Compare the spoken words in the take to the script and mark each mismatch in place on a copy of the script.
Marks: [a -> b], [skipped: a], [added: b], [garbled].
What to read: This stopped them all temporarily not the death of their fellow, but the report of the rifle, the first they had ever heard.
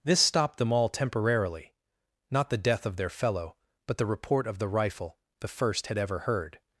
This stopped them all temporarily not the death of their fellow, but the report of the rifle, the first [skipped: they] had ever heard.